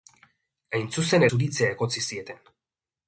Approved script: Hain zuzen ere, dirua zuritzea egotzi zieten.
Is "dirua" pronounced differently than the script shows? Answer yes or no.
yes